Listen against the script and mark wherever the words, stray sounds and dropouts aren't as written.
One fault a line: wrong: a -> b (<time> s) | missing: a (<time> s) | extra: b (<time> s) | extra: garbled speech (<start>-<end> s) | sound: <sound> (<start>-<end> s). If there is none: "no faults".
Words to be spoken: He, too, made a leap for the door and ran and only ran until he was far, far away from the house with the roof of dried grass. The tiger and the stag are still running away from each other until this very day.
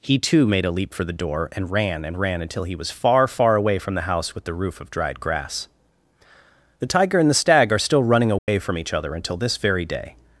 missing: only (2.2 s)
sound: dropout (8.4-8.5 s)